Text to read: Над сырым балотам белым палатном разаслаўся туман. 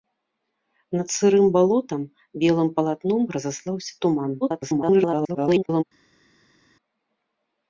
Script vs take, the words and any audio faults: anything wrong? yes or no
yes